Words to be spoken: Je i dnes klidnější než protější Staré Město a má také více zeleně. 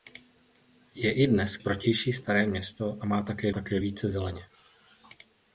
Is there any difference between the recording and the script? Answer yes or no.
yes